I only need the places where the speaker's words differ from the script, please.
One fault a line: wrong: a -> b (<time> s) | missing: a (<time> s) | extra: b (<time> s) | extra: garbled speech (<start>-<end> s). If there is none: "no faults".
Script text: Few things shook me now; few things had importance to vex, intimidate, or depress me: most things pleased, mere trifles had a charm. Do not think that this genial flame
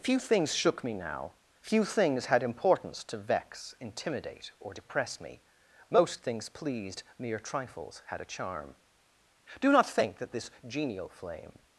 no faults